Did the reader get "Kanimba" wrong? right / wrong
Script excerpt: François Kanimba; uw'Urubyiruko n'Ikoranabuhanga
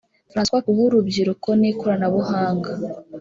wrong